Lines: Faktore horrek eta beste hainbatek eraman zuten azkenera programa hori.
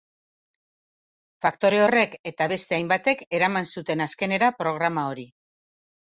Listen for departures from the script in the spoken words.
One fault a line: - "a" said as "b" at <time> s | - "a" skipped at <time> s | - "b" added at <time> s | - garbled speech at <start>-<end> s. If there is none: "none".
none